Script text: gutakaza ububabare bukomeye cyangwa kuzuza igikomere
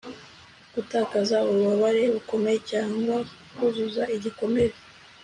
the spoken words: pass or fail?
pass